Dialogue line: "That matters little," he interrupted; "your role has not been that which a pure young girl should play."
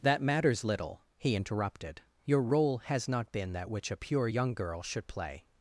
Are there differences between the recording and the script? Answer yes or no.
no